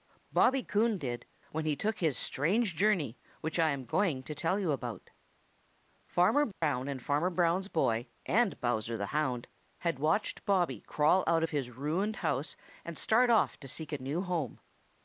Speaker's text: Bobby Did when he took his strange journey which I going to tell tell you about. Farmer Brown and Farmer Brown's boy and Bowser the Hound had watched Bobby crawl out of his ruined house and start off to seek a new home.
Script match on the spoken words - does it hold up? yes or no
no